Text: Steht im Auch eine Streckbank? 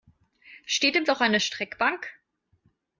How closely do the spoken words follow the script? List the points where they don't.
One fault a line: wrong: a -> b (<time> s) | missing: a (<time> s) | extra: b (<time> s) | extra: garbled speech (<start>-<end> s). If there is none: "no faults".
no faults